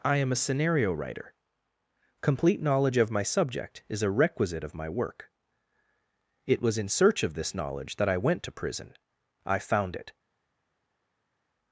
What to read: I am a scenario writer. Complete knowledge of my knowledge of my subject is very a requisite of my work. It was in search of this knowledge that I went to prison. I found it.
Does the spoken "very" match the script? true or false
false